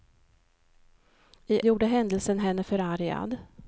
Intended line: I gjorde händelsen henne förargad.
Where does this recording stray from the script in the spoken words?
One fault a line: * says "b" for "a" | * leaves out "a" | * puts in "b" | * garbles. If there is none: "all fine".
all fine